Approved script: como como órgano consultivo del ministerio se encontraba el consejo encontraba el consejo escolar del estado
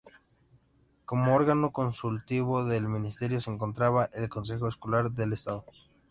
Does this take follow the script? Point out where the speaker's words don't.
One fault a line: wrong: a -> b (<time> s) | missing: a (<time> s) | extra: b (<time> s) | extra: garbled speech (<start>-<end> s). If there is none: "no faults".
missing: como (1.4 s)
missing: encontraba el consejo (4.7 s)